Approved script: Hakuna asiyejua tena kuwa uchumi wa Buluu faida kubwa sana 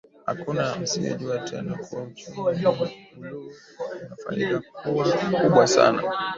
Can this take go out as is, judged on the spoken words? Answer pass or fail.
fail